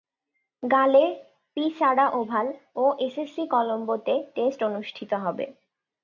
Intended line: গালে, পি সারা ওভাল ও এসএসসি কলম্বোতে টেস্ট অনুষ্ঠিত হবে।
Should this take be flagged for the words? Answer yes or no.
no